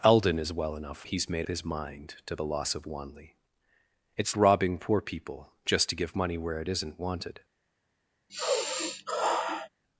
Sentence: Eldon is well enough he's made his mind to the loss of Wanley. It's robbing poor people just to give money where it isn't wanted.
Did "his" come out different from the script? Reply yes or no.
no